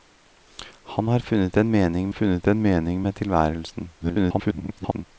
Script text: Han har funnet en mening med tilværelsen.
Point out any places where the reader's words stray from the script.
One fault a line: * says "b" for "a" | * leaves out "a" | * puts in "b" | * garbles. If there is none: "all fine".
* puts in "funnet en mening"
* garbles